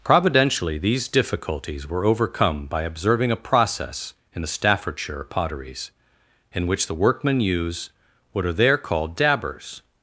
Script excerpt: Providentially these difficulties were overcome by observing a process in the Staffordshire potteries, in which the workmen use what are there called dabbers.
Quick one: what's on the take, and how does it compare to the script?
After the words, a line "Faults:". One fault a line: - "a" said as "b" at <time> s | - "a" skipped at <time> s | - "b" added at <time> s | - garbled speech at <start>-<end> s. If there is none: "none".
Providentially these difficulties were overcome by observing a process in the Staffordshire potteries, in which the workmen use what are there called dabbers.
Faults:
none